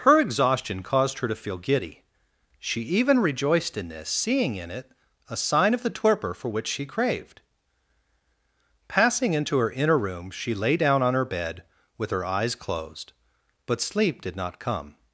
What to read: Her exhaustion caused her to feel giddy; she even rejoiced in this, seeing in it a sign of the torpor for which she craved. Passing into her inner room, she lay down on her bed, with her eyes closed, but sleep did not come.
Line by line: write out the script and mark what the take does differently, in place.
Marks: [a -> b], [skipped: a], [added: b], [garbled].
Her exhaustion caused her to feel giddy; she even rejoiced in this, seeing in it a sign of the torpor for which she craved. Passing into her inner room, she lay down on her bed, with her eyes closed, but sleep did not come.